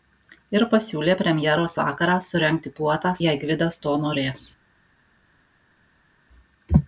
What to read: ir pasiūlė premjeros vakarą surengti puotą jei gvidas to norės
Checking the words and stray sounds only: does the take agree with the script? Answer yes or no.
yes